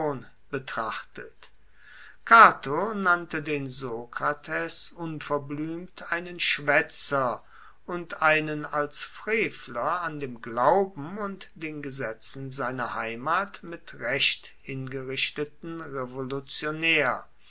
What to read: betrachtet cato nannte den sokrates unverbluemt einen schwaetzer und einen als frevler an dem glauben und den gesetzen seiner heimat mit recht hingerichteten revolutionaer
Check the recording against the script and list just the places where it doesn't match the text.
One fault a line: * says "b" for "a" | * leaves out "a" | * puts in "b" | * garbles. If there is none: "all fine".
all fine